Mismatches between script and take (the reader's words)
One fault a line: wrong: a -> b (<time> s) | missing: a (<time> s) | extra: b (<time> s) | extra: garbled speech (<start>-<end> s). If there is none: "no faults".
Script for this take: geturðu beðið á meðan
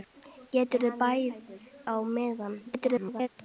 missing: beðið (0.9 s)
extra: garbled speech (2.7-3.3 s)